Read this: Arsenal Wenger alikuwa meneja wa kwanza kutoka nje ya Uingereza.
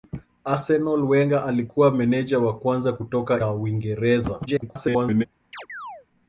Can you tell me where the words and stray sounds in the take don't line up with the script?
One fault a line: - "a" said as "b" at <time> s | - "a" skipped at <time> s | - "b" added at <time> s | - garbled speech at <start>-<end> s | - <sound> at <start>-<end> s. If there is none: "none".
- "nje" skipped at 3.4 s
- garbled speech at 4.5-5.3 s
- chirp at 5.5-6.1 s